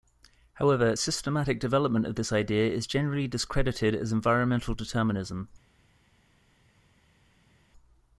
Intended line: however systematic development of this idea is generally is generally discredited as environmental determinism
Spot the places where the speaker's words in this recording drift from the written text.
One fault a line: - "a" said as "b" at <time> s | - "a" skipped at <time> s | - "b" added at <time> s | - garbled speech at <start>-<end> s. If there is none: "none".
- "is generally" skipped at 3.3 s